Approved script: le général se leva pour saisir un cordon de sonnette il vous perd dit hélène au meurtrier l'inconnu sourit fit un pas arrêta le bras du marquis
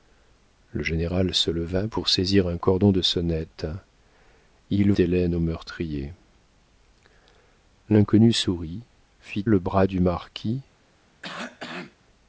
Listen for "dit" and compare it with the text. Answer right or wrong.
wrong